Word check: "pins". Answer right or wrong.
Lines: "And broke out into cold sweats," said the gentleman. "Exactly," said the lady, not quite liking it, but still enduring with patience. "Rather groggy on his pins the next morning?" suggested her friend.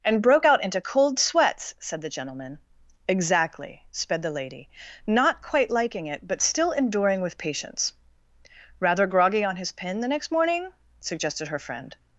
wrong